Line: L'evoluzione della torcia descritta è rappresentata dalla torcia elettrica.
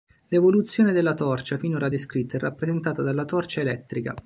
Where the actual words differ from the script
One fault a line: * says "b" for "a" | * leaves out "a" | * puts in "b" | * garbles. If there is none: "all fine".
* puts in "finora"